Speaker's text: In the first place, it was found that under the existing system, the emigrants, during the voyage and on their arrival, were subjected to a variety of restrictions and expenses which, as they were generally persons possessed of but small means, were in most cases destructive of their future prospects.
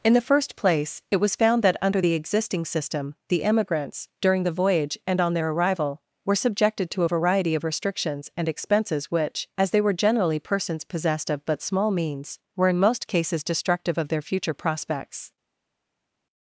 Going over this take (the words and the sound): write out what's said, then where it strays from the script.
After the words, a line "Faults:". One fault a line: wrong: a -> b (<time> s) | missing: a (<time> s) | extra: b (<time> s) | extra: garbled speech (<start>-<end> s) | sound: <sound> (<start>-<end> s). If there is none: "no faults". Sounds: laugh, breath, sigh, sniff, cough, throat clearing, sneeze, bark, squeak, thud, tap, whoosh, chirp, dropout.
In the first place, it was found that under the existing system, the emigrants, during the voyage and on their arrival, were subjected to a variety of restrictions and expenses which, as they were generally persons possessed of but small means, were in most cases destructive of their future prospects.
Faults:
no faults